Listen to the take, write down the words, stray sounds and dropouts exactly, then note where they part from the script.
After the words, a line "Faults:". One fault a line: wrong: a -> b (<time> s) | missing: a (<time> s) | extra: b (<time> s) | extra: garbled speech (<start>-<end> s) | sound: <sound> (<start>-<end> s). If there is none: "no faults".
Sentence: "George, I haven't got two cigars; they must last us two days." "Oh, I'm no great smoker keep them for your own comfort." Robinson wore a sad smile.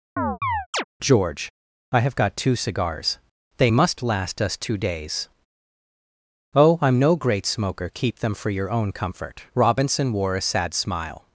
"George, I have got two cigars; they must last us two days." "Oh, I'm no great smoker keep them for your own comfort." Robinson wore a sad smile.
Faults:
sound: chirp (0.2-0.8 s)
wrong: haven't -> have (2.0 s)